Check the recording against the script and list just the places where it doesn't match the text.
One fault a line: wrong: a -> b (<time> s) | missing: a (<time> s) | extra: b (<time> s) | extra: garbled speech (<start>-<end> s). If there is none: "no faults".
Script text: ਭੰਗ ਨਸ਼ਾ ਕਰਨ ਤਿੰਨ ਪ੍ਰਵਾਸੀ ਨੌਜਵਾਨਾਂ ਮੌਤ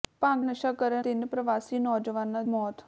no faults